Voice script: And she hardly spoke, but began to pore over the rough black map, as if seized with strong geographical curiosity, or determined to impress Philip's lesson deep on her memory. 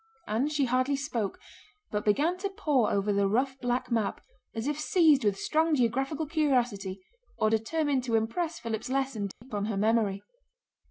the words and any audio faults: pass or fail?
fail